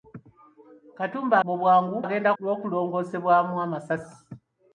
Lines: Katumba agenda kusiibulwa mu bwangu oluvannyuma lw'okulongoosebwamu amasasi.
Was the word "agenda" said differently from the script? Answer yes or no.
yes